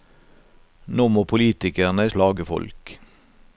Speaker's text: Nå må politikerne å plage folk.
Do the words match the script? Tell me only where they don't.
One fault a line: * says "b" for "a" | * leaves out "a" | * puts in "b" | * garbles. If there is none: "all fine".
all fine